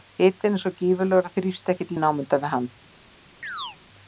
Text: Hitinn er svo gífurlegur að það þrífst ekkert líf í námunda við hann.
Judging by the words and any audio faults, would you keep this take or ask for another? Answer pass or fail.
fail